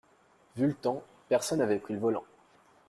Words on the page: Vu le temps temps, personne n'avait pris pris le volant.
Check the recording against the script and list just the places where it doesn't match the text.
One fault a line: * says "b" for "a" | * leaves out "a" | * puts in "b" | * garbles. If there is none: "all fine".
* leaves out "temps"
* leaves out "pris"